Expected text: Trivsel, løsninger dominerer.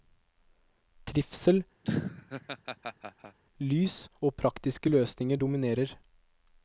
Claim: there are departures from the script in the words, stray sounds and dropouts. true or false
true